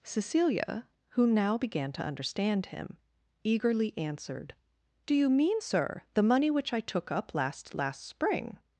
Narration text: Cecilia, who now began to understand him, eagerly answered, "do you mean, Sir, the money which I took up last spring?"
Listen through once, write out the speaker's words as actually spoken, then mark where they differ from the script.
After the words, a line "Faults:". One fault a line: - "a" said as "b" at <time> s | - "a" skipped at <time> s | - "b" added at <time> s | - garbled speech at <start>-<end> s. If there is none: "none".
Cecilia, who now began to understand him, eagerly answered, "do you mean, Sir, the money which I took up last last spring?"
Faults:
- "last" added at 7.7 s